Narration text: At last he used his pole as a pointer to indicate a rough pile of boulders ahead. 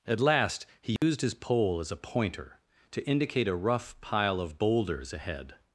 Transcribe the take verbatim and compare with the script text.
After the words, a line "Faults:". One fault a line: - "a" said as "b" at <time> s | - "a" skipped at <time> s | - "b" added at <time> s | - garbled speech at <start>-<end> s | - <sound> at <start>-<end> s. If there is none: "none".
At last he used his pole as a pointer to indicate a rough pile of boulders ahead.
Faults:
- dropout at 1.0-1.0 s